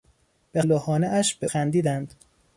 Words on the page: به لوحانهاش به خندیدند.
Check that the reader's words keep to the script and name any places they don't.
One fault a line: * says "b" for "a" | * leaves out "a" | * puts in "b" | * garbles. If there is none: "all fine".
all fine